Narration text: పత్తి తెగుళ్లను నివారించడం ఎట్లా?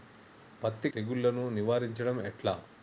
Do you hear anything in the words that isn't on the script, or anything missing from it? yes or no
no